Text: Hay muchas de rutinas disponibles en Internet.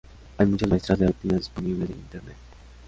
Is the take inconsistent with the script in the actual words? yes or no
yes